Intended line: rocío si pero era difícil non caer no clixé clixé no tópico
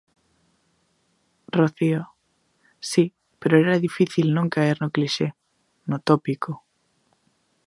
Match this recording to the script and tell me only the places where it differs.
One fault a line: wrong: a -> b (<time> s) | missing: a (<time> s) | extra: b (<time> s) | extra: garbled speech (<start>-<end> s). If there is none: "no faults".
missing: clixé (5.3 s)